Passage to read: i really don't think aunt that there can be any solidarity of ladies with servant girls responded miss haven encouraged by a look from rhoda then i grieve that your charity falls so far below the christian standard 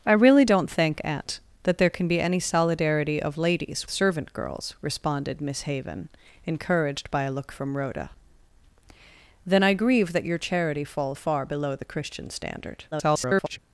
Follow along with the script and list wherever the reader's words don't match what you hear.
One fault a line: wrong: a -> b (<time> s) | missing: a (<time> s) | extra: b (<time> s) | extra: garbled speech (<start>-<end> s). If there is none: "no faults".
missing: with (3.9 s)
missing: so (11.2 s)
extra: garbled speech (12.9-13.6 s)